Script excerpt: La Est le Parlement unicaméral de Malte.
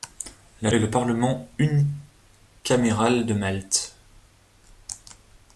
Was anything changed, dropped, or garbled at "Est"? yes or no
no